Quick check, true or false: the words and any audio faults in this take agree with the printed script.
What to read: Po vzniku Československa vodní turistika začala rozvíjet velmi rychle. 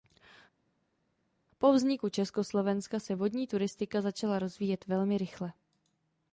false